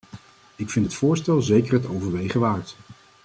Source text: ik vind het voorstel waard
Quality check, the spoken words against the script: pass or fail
fail